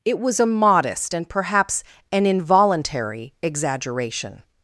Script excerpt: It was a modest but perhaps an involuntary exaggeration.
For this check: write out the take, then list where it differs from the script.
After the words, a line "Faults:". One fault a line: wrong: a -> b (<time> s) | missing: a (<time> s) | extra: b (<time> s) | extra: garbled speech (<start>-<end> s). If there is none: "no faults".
It was a modest and perhaps an involuntary exaggeration.
Faults:
wrong: but -> and (1.1 s)